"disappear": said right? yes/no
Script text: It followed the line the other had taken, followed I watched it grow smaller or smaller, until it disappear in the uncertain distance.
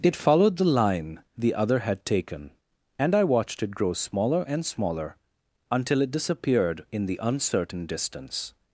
no